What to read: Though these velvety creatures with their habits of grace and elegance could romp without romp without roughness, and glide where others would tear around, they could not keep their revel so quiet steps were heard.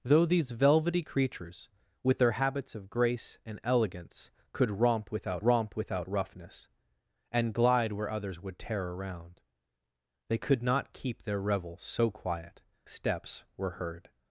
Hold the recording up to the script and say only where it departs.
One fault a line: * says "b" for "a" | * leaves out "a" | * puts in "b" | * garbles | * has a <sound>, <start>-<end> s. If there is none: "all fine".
all fine